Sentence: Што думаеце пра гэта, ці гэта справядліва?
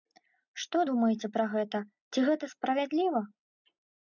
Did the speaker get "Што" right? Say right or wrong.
right